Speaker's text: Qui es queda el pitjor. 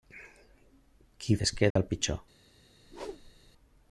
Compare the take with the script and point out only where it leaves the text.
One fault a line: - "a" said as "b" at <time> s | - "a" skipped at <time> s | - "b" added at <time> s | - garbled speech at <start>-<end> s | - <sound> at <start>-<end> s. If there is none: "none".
- dropout at 1.7-1.8 s
- whoosh at 2.8-3.5 s